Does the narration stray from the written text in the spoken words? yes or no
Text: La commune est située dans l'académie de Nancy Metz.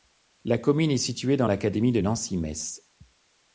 no